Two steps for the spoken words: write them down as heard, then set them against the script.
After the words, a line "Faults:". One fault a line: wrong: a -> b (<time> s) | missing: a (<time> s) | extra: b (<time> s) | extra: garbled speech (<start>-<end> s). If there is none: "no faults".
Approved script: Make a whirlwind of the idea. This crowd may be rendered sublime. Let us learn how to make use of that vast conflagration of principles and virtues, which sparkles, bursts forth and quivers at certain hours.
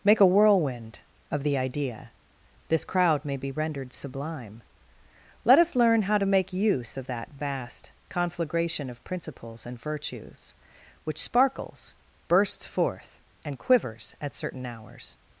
Make a whirlwind of the idea. This crowd may be rendered sublime. Let us learn how to make use of that vast conflagration of principles and virtues, which sparkles, bursts forth and quivers at certain hours.
Faults:
no faults